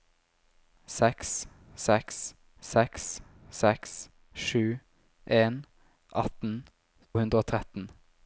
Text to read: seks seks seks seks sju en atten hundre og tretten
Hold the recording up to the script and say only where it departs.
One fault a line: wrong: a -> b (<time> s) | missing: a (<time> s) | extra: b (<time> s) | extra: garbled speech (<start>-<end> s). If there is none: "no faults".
no faults